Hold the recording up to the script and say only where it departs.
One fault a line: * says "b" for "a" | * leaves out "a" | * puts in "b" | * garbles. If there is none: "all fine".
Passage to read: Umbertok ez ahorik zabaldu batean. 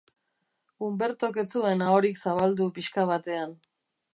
* puts in "zuen"
* puts in "pixka"